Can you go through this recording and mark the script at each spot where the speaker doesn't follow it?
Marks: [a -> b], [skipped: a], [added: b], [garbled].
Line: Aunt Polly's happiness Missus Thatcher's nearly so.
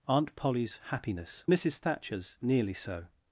Aunt Polly's happiness Missus Thatcher's nearly so.